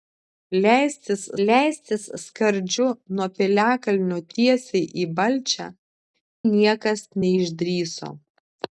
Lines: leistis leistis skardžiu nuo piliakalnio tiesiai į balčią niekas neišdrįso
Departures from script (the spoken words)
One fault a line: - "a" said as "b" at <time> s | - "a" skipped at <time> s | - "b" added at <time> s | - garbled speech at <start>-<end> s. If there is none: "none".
none